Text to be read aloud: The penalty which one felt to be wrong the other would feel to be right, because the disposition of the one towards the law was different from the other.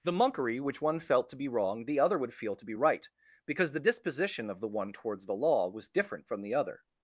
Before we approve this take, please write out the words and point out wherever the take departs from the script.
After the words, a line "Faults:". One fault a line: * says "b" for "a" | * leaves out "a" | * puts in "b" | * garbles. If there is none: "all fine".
The monkery which one felt to be wrong the other would feel to be right, because the disposition of the one towards the law was different from the other.
Faults:
* says "monkery" for "penalty"